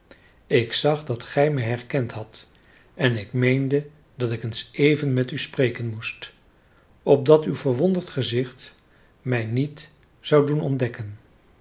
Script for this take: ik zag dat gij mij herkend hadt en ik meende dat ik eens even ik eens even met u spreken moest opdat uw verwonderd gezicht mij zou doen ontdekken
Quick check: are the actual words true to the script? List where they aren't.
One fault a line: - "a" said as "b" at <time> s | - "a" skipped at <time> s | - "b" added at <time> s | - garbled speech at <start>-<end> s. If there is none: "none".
- "ik eens even" skipped at 5.1 s
- "niet" added at 9.4 s